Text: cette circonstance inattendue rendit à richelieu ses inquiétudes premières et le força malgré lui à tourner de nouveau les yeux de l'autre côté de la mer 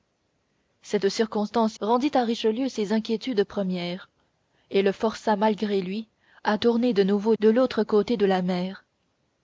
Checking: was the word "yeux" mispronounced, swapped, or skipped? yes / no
yes